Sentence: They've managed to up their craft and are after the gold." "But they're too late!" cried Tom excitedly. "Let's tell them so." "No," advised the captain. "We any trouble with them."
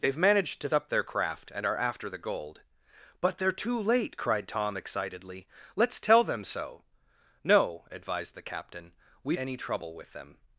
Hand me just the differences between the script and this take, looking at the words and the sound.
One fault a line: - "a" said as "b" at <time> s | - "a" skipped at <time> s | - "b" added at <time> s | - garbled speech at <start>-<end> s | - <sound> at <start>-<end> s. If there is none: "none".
none